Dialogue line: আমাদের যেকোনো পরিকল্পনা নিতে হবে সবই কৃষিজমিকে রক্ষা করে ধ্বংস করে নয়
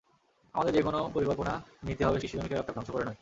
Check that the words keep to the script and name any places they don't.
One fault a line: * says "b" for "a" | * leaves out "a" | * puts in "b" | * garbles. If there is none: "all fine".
* leaves out "সবই"
* leaves out "করে"